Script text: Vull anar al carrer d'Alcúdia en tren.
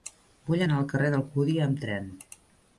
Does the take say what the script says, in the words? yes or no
no